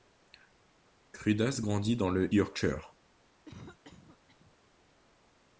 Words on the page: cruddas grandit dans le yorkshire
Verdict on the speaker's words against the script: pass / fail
pass